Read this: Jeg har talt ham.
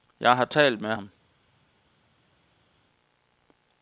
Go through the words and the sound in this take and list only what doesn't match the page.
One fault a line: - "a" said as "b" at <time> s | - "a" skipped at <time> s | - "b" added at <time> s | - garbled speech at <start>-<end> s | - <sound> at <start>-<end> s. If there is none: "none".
- "med" added at 0.8 s